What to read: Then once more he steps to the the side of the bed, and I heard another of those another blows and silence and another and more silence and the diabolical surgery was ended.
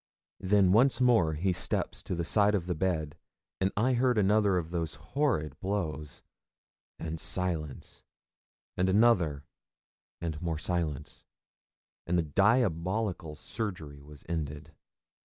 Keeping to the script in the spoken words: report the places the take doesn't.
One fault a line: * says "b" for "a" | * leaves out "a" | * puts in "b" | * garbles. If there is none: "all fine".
* leaves out "the"
* says "horrid" for "another"